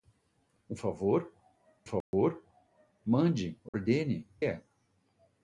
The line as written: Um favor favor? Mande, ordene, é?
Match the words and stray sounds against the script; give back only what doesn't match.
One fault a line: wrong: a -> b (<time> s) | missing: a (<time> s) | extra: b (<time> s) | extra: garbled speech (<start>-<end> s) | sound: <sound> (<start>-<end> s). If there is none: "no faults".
sound: dropout (2.0-2.1 s)
sound: dropout (3.7-3.7 s)